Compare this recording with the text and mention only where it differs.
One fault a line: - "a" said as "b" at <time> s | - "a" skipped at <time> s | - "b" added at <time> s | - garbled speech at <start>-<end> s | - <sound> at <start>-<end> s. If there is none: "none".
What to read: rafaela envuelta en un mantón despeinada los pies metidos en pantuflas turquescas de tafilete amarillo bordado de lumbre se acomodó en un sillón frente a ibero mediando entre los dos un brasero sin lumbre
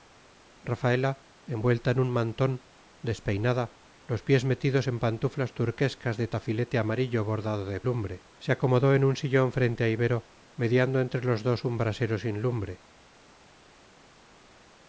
none